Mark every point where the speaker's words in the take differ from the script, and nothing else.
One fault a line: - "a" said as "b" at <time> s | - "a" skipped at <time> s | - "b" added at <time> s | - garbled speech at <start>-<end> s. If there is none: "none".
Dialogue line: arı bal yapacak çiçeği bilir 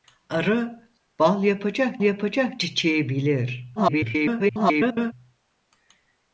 - "yapacak" added at 2.0 s
- garbled speech at 3.8-5.1 s